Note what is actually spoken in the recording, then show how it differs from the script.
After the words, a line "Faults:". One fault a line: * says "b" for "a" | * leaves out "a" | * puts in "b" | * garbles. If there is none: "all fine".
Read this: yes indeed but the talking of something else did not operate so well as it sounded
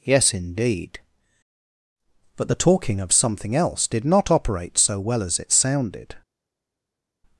yes indeed but the talking of something else did not operate so well as it sounded
Faults:
all fine